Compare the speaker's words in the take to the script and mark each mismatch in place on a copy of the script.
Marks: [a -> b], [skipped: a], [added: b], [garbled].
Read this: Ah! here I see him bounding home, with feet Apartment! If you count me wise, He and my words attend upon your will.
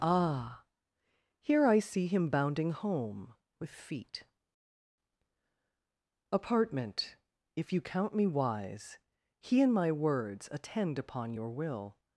Ah! here I see him bounding home, with feet Apartment! If you count me wise, He and my words attend upon your will.